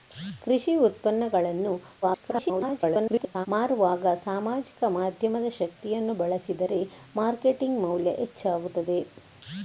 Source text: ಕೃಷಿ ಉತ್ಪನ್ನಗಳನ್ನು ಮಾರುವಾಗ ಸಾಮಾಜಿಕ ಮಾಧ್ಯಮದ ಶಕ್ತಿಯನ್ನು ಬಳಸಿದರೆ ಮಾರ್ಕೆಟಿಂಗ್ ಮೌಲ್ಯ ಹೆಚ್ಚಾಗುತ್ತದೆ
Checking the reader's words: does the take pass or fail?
fail